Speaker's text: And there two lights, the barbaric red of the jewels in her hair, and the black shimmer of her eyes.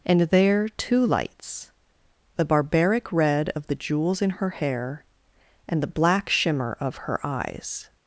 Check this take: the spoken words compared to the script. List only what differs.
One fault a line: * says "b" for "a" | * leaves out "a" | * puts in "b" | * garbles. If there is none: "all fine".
all fine